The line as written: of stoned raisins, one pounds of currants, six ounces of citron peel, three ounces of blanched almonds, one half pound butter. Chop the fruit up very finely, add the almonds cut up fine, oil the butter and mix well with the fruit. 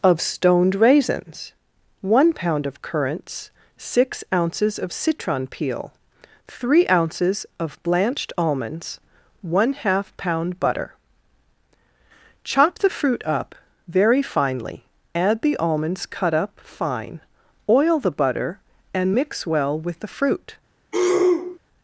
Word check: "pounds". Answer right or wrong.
wrong